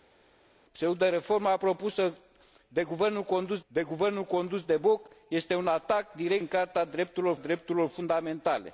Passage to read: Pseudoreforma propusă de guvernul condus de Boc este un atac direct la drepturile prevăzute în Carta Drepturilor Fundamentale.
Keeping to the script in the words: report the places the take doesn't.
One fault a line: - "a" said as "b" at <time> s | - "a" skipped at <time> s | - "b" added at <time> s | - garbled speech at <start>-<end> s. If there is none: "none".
- "guvernul condus de" added at 3.8 s
- "la drepturile prevăzute" skipped at 6.4 s
- "Drepturilor" added at 7.4 s